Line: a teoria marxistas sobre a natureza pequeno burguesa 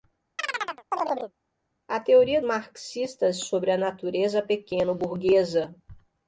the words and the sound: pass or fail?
fail